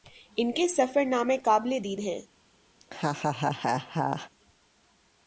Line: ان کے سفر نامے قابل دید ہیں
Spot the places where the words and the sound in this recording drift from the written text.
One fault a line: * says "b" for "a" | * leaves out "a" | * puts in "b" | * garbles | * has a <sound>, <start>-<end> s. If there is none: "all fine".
* has a laugh, 2.8-4.3 s